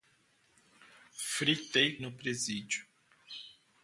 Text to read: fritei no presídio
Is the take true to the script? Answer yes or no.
yes